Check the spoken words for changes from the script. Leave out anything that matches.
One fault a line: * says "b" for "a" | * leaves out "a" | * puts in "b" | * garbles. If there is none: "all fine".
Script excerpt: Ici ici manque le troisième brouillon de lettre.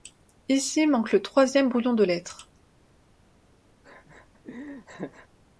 * leaves out "ici"